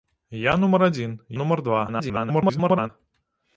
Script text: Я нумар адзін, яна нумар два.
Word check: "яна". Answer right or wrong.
wrong